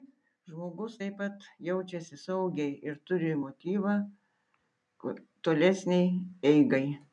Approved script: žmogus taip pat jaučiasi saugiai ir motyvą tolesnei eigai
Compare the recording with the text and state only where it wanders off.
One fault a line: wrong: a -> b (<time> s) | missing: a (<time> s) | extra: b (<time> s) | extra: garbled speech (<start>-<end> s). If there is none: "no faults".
extra: turi (3.1 s)